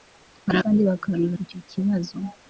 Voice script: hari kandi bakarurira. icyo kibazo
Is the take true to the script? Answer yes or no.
yes